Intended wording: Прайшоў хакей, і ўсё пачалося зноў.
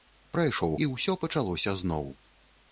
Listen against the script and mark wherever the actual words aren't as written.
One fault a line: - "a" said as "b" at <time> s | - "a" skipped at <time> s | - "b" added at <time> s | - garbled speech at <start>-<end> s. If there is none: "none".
- "хакей" skipped at 0.7 s